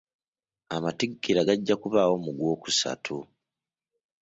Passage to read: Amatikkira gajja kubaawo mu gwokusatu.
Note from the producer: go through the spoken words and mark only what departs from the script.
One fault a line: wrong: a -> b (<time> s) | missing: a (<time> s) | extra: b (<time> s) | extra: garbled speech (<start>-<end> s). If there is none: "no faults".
no faults